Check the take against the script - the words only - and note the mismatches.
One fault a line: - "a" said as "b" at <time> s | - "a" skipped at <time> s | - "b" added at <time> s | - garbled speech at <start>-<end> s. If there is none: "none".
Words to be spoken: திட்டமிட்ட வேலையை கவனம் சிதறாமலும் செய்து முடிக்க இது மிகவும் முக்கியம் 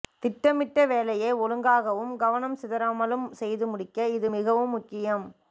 - "ஒழுங்காகவும்" added at 1.4 s